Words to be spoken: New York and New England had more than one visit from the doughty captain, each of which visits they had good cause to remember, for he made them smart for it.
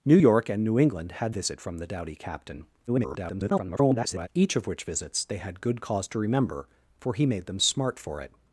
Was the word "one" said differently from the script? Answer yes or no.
yes